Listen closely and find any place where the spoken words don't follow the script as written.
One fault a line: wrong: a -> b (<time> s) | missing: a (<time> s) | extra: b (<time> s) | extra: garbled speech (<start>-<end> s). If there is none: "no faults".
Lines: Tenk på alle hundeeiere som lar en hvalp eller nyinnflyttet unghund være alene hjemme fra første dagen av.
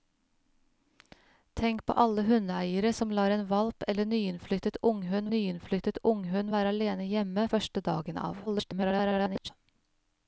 extra: nyinnflyttet unghund (5.3 s)
missing: fra (7.5 s)
extra: garbled speech (8.5-9.5 s)